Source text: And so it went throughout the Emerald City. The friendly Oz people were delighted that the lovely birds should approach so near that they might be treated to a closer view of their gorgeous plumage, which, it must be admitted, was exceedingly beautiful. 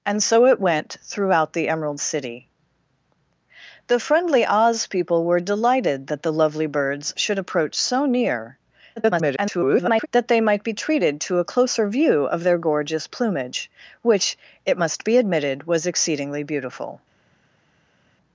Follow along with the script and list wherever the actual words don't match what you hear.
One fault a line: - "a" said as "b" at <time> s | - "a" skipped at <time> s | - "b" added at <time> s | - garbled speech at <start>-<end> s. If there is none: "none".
- garbled speech at 9.0-10.1 s